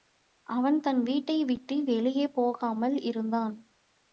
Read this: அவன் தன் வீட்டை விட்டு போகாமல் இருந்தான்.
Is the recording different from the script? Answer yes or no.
yes